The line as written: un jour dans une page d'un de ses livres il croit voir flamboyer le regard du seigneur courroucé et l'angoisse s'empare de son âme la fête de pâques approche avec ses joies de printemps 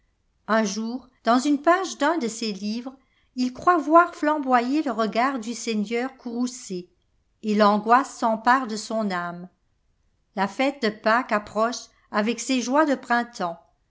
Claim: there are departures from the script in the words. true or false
false